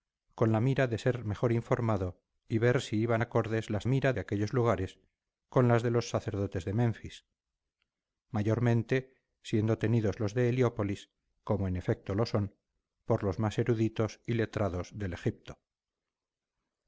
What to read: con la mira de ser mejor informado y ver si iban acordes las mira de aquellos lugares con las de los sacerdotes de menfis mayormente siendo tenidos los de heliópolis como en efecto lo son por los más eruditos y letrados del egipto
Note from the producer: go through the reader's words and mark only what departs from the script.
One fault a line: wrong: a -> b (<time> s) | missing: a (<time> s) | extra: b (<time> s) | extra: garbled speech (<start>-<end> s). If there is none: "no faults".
no faults